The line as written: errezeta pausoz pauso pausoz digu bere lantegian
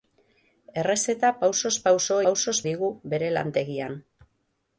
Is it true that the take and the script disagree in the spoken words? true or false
false